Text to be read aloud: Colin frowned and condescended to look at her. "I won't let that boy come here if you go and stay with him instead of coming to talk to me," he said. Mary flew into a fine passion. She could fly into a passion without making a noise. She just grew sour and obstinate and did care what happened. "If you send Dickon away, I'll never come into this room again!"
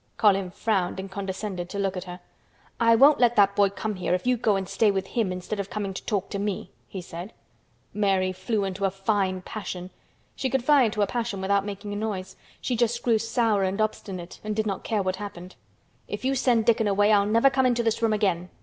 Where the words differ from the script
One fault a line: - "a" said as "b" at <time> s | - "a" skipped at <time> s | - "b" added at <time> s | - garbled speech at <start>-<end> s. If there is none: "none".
- "not" added at 14.7 s